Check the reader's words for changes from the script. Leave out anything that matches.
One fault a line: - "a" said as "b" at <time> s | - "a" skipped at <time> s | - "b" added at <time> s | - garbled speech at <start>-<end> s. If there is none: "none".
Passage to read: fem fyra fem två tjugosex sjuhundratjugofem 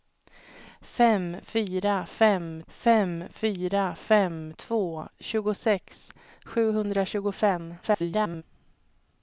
- "fem fyra fem" added at 2.7 s
- garbled speech at 7.8-8.4 s